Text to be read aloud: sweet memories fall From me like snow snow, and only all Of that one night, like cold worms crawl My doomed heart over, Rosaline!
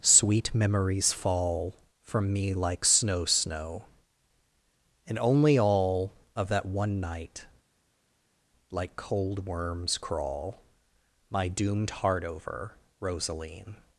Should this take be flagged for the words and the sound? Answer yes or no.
no